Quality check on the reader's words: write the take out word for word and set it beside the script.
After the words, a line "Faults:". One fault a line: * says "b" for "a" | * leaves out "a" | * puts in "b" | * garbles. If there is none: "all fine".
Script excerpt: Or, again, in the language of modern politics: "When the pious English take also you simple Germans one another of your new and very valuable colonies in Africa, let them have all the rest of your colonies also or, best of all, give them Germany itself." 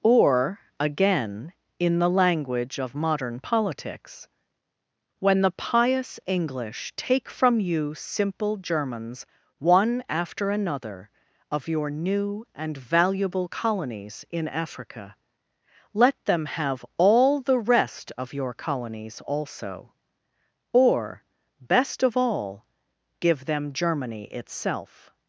Or, again, in the language of modern politics: "When the pious English take from you simple Germans one after another of your new and valuable colonies in Africa, let them have all the rest of your colonies also or, best of all, give them Germany itself."
Faults:
* says "from" for "also"
* puts in "after"
* leaves out "very"